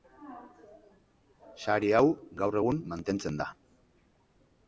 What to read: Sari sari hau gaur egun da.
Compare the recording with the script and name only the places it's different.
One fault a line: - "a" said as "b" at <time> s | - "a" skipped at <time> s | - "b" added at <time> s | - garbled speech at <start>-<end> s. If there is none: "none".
- "sari" skipped at 1.9 s
- "mantentzen" added at 2.9 s